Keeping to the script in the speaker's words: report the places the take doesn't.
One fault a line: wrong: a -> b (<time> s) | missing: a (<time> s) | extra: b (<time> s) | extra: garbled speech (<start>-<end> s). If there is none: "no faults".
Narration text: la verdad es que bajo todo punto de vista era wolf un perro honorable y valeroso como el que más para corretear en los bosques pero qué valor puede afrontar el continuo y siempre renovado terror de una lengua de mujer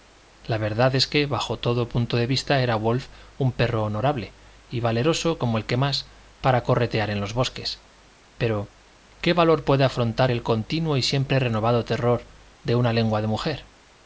no faults